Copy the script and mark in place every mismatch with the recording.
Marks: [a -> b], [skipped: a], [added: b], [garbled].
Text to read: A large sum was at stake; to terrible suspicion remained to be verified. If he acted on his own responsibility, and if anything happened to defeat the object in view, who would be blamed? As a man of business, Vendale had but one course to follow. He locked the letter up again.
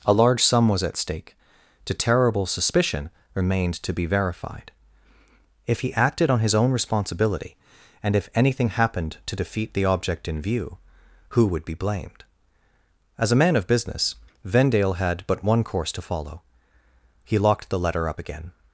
A large sum was at stake; to terrible suspicion remained to be verified. If he acted on his own responsibility, and if anything happened to defeat the object in view, who would be blamed? As a man of business, Vendale had but one course to follow. He locked the letter up again.